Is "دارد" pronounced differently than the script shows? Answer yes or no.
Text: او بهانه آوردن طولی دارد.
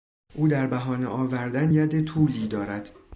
no